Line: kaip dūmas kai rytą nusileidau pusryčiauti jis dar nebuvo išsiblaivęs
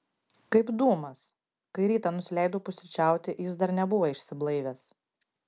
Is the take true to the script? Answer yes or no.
yes